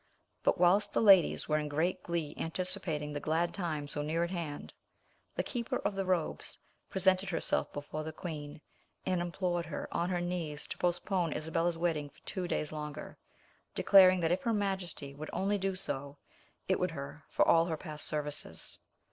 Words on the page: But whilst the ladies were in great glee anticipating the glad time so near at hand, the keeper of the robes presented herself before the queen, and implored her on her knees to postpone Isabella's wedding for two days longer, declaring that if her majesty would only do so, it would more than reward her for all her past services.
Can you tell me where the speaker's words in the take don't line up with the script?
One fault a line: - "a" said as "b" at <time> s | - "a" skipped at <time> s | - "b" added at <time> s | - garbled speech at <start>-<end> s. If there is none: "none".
- "more than reward" skipped at 16.9 s